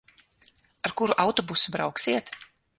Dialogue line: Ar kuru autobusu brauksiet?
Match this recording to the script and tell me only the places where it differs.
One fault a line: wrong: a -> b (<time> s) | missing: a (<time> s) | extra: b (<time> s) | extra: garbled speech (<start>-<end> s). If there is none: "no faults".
no faults